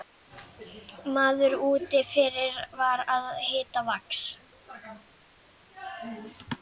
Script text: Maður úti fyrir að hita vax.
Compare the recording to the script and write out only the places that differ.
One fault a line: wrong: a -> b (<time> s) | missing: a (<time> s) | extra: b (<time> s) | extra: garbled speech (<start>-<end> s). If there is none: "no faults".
extra: var (2.8 s)